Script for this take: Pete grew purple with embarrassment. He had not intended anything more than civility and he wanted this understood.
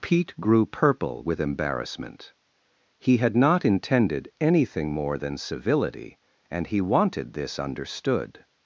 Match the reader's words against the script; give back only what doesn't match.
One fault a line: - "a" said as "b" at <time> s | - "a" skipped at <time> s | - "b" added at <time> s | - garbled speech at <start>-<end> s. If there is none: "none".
none